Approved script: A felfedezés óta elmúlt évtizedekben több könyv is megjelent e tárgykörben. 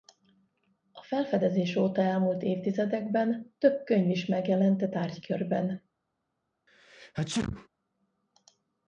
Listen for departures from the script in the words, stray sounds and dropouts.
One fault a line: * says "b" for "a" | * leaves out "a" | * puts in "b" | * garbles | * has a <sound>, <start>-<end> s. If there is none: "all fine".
* has a sneeze, 6.7-7.7 s